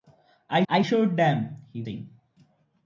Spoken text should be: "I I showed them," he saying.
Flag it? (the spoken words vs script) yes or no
no